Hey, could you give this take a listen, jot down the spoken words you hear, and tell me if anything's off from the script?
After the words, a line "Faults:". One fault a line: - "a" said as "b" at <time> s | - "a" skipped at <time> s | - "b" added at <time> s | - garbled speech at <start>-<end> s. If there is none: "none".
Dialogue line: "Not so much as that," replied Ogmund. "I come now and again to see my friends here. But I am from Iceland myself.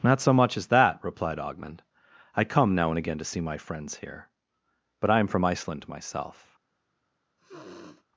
"Not so much as that," replied Ogmund. "I come now and again to see my friends here. But I am from Iceland myself.
Faults:
none